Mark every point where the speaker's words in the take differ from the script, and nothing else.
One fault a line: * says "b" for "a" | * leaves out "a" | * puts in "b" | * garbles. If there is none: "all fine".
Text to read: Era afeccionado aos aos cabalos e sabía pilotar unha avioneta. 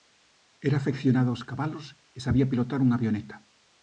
* leaves out "aos"